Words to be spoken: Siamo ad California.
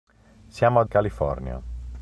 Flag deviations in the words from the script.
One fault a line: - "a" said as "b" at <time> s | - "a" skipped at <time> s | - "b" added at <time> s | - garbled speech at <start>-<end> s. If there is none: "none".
none